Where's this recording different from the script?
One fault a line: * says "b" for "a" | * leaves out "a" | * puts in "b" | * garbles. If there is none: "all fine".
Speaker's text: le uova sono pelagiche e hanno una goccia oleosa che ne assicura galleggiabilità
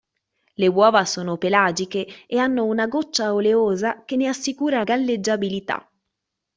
all fine